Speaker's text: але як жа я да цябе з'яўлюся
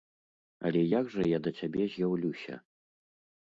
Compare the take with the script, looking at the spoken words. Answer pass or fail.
pass